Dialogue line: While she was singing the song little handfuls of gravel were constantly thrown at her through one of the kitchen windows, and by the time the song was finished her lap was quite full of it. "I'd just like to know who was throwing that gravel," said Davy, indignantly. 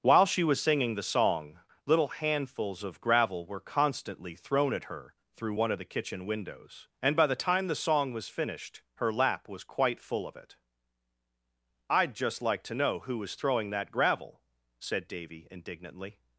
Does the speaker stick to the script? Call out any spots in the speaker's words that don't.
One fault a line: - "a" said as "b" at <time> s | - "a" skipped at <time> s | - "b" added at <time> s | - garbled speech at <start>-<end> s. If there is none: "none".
none